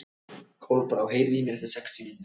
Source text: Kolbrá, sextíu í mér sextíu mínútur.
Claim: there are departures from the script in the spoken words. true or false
true